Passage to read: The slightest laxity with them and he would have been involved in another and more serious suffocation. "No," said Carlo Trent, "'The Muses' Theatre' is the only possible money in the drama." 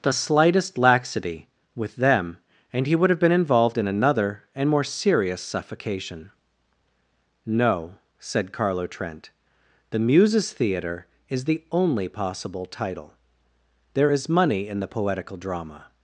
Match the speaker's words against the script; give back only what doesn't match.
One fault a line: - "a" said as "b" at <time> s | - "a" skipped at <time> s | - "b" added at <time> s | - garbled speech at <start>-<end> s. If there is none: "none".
- "title There is" added at 12.7 s
- "poetical" added at 14.9 s